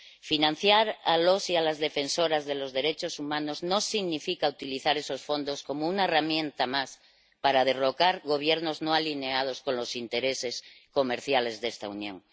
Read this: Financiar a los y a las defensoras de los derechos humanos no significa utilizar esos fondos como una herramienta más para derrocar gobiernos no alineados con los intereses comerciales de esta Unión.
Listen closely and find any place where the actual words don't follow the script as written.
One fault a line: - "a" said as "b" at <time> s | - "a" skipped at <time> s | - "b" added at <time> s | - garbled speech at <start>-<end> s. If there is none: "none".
none